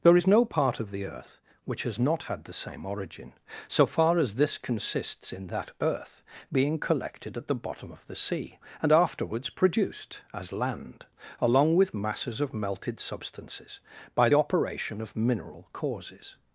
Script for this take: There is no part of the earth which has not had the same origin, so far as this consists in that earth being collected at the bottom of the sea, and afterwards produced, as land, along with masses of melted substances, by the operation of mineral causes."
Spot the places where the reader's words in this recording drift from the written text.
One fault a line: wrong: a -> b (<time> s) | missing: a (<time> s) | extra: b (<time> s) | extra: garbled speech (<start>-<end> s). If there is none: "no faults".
missing: the (14.3 s)